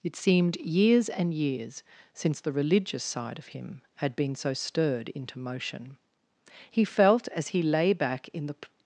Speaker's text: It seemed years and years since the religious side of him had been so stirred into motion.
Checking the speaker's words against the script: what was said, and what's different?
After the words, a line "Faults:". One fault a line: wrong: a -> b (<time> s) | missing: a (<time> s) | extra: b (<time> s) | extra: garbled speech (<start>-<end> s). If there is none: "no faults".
It seemed years and years since the religious side of him had been so stirred into motion. He felt, as he lay back in the
Faults:
extra: He felt as he lay back in the (6.7 s)